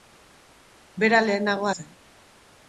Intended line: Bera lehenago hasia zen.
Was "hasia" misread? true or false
true